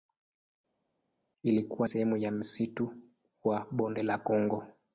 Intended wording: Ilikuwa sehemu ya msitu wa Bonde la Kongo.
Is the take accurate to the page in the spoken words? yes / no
yes